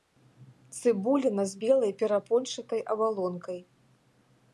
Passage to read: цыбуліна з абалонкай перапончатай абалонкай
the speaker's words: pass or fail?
fail